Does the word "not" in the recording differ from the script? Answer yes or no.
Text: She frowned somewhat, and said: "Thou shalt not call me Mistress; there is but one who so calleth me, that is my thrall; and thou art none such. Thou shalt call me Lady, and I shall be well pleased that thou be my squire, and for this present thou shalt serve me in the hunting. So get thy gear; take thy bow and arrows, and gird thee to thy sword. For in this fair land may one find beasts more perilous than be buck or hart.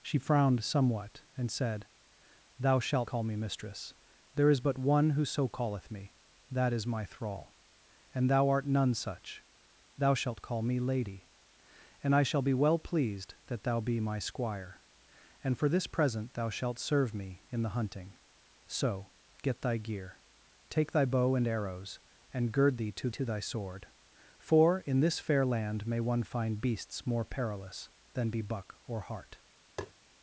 yes